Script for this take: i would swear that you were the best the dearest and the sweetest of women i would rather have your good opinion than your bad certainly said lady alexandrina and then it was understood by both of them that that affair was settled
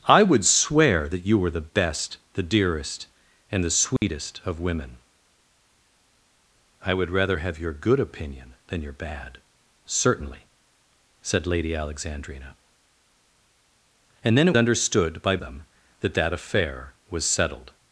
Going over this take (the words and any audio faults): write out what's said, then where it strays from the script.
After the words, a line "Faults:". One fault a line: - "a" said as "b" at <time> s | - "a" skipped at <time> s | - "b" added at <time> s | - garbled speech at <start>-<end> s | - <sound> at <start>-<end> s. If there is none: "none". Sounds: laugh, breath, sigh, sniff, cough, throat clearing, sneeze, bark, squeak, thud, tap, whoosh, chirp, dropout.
i would swear that you were the best the dearest and the sweetest of women i would rather have your good opinion than your bad certainly said lady alexandrina and then it understood by them that that affair was settled
Faults:
- dropout at 4.0-4.0 s
- "was" skipped at 14.6 s
- "both of" skipped at 15.4 s